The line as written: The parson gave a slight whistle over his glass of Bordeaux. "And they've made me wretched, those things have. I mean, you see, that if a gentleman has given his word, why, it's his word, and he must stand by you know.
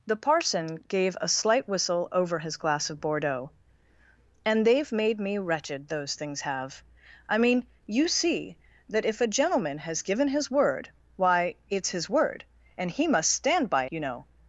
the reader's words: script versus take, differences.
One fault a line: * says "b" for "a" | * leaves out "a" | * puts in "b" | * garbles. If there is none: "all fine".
all fine